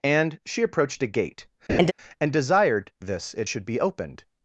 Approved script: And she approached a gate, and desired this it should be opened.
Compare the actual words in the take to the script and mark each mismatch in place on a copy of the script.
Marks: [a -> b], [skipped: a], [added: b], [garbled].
And she approached a gate, and desired this it should be opened.